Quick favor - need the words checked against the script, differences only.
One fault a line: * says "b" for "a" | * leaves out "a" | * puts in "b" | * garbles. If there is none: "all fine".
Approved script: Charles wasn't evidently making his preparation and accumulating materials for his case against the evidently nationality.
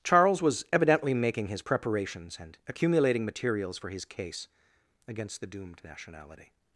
* says "was" for "wasn't"
* says "preparations" for "preparation"
* says "doomed" for "evidently"